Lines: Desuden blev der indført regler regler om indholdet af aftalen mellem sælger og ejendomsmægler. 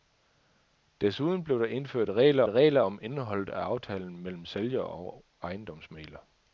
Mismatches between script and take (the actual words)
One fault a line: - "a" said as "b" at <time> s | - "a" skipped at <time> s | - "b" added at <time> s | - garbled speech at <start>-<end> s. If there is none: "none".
none